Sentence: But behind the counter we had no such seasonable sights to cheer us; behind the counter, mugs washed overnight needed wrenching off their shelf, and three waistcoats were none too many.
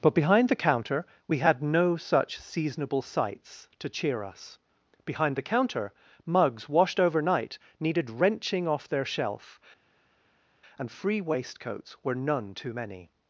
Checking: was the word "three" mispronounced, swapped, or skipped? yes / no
yes